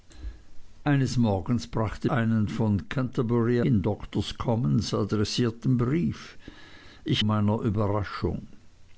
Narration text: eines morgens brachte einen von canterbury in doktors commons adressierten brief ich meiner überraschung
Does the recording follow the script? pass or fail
pass